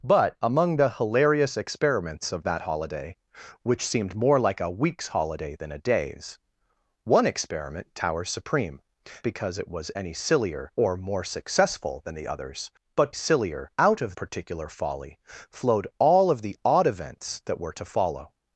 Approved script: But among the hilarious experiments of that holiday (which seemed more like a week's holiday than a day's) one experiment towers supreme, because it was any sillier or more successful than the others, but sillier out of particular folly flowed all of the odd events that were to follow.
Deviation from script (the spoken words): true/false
false